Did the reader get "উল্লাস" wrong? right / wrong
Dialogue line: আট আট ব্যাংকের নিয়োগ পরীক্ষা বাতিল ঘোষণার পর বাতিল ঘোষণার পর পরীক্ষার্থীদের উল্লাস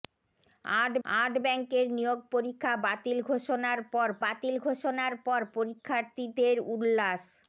right